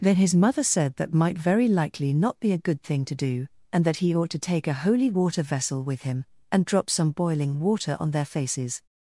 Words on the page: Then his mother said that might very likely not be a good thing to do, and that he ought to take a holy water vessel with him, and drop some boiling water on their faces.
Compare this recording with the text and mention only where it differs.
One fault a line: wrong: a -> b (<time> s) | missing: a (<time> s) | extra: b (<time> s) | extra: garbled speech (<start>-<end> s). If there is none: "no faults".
no faults